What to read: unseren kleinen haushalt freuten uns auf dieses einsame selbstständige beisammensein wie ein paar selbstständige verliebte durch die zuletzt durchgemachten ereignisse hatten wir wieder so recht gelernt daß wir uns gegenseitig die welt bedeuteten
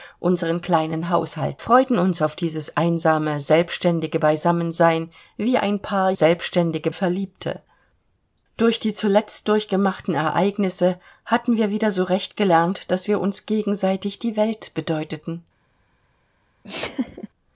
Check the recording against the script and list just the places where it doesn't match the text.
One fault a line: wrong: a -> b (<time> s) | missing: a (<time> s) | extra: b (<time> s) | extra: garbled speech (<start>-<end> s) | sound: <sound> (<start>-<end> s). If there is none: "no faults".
sound: laugh (16.6-17.3 s)